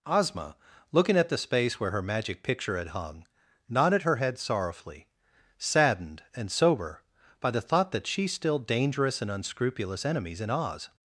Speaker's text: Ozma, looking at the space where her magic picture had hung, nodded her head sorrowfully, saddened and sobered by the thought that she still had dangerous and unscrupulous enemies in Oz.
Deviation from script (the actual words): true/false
true